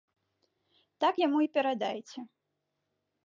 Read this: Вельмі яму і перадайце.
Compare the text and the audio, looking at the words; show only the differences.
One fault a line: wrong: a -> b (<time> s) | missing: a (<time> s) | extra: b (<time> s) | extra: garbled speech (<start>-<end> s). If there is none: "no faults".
wrong: Вельмі -> Так (1.0 s)